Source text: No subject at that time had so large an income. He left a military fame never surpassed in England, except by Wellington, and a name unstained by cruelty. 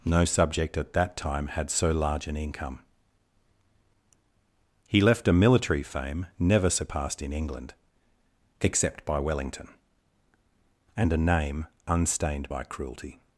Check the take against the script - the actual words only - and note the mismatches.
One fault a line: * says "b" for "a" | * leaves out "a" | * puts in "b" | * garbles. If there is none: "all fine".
all fine